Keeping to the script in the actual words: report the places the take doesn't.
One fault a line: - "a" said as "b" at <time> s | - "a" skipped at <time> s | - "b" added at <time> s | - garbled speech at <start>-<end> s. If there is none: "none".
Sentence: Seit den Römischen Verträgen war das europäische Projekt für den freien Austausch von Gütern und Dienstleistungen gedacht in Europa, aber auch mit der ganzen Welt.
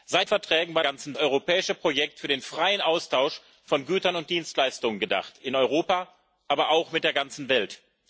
- "den Römischen" skipped at 0.3 s
- "das" said as "ganzen" at 0.8 s